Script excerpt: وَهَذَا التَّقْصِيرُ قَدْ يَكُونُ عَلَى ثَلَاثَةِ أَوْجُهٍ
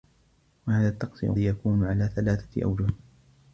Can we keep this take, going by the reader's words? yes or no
no